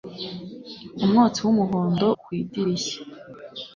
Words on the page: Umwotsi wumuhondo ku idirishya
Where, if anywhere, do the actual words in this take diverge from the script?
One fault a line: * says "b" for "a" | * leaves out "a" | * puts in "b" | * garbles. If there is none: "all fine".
all fine